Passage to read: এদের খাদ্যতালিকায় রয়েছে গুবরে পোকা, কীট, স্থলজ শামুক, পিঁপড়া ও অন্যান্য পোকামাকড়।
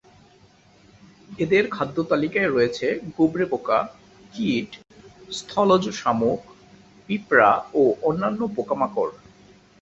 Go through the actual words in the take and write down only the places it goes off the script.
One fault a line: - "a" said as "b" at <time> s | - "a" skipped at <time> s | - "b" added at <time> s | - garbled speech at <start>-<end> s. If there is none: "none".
none